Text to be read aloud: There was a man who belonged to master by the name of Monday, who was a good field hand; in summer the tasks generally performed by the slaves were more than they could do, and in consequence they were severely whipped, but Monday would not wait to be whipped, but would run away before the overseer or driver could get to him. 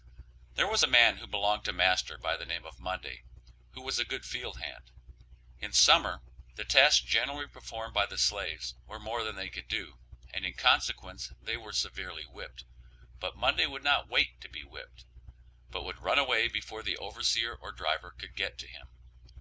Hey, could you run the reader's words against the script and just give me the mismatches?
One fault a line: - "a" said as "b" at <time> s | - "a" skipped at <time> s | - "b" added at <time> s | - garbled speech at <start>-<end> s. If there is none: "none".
none